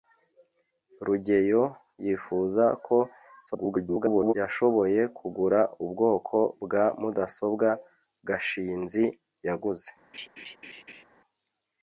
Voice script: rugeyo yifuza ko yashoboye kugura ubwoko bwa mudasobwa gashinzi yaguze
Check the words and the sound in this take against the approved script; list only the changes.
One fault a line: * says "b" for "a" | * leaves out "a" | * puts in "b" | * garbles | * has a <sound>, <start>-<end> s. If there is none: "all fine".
* garbles
* has a laugh, 10.1-11.0 s